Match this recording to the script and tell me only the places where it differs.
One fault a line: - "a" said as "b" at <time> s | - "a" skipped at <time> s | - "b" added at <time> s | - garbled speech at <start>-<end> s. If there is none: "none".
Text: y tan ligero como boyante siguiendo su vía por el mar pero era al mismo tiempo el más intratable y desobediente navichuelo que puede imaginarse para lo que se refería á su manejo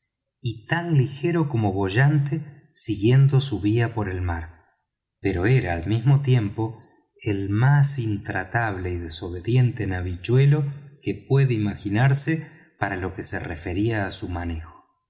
none